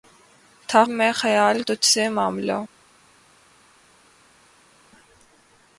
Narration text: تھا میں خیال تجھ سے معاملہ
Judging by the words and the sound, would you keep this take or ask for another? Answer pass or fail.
pass